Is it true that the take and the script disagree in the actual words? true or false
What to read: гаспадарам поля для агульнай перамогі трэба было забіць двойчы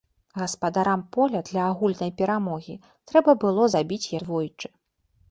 false